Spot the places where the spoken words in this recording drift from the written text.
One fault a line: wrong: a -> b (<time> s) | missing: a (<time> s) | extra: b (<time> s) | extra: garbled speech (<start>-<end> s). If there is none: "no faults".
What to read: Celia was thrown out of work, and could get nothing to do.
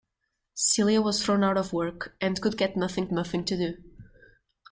extra: nothing (3.1 s)